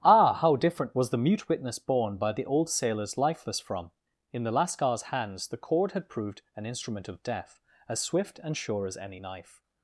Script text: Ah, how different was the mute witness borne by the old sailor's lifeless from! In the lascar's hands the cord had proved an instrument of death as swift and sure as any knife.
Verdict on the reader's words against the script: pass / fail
pass